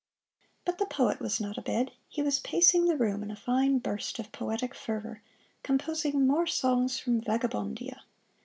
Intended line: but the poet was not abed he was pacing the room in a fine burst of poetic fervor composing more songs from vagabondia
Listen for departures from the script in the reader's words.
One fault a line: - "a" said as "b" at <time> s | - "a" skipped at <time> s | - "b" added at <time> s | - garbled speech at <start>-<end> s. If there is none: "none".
none